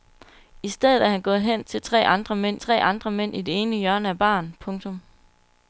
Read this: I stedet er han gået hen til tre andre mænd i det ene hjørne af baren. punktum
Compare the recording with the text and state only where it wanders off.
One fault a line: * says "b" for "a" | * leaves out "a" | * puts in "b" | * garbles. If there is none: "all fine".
* puts in "tre andre mænd"